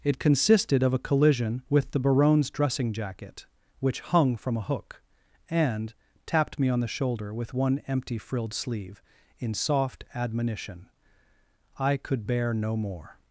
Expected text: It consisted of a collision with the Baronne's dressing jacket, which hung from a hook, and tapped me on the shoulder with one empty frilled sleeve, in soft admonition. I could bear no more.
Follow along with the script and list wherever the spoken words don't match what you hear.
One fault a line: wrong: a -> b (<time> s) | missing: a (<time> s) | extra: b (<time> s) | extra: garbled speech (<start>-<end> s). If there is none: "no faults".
no faults